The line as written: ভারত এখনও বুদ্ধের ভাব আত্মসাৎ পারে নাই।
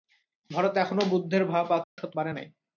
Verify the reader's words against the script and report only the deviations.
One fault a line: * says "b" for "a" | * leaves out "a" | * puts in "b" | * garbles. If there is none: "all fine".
all fine